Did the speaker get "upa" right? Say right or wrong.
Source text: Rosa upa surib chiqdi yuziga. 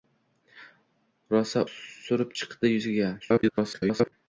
wrong